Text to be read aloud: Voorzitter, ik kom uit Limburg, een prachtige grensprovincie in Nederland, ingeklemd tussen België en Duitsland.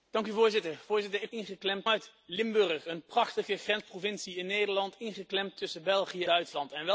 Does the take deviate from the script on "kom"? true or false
true